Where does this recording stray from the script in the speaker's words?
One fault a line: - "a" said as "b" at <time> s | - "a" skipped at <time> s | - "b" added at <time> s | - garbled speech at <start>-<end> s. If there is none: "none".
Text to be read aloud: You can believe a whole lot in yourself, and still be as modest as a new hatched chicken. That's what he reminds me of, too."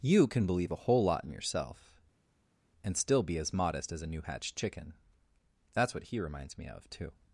none